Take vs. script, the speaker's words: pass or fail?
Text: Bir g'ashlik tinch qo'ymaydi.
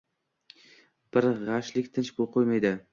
pass